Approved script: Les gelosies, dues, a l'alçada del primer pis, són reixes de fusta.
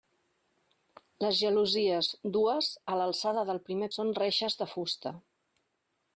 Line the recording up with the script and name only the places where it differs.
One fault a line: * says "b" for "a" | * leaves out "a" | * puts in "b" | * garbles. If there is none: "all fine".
* leaves out "pis"